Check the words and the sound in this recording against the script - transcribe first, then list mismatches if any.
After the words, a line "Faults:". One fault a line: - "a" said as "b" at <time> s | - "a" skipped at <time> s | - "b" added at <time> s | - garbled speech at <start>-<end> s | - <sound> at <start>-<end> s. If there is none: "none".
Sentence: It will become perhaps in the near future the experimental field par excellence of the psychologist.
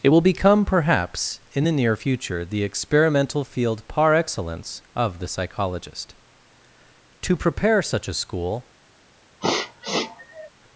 It will become perhaps in the near future the experimental field par excellence of the psychologist. To prepare such a school
Faults:
- "To prepare such a school" added at 7.2 s
- sniff at 9.4-10.5 s